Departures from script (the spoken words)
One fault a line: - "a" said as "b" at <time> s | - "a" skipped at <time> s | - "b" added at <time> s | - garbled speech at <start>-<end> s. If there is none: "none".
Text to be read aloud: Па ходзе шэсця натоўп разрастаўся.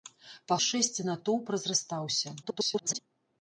- "ходзе" skipped at 0.6 s
- garbled speech at 2.4-3.0 s